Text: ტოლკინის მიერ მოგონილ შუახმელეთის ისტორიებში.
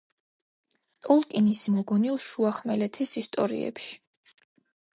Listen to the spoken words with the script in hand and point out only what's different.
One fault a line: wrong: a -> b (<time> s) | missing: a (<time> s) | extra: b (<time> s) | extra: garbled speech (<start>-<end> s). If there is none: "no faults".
missing: მიერ (1.6 s)